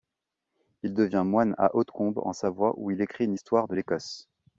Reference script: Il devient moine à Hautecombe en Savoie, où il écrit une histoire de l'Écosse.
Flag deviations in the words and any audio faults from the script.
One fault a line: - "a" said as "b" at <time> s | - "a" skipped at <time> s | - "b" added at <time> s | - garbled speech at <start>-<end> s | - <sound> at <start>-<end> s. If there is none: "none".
none